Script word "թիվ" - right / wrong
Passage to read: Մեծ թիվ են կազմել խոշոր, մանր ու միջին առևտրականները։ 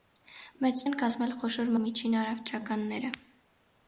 wrong